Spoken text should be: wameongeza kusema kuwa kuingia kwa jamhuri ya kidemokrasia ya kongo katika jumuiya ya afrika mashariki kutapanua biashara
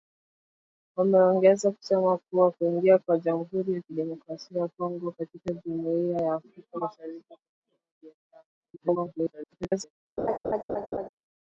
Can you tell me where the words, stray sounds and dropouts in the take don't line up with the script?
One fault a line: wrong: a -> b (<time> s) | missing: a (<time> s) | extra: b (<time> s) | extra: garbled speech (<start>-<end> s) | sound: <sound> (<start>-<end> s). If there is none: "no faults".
extra: garbled speech (8.5-10.0 s)
sound: laugh (10.2-11.1 s)